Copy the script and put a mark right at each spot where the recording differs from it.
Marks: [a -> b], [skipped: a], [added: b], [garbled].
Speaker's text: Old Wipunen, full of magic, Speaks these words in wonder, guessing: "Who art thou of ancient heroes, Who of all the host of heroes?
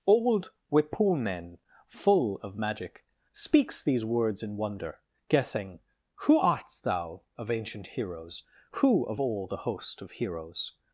Old Wipunen, full of magic, Speaks these words in wonder, guessing: "Who art thou of ancient heroes, Who of all the host of heroes?